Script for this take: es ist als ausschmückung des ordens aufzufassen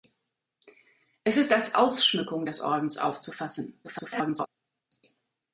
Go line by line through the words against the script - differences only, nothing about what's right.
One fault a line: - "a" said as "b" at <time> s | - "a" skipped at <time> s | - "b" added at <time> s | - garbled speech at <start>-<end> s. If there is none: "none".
- garbled speech at 3.8-4.5 s